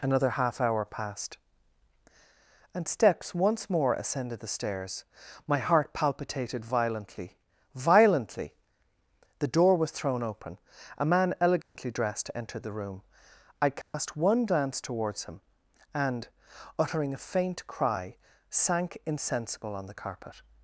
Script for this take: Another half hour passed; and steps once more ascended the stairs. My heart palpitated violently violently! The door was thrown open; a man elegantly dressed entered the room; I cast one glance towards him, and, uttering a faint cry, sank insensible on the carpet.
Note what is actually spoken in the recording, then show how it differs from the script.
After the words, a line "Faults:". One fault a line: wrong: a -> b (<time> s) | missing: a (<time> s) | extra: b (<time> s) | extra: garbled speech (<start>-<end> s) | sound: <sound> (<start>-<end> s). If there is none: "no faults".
Another half hour passed; and steps once more ascended the stairs. My heart palpitated violently violently! The door was thrown open; a man elegantly dressed entered the room; I cast one glance towards him, and, uttering a faint cry, sank insensible on the carpet.
Faults:
sound: dropout (11.6-11.8 s)
sound: dropout (13.8-13.9 s)